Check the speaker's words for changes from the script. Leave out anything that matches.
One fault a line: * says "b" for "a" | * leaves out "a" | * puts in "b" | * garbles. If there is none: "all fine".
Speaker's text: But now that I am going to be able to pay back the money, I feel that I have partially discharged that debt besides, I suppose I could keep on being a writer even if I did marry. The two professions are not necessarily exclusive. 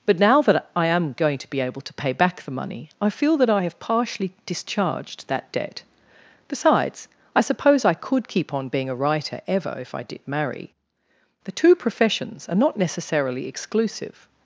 * says "ever" for "even"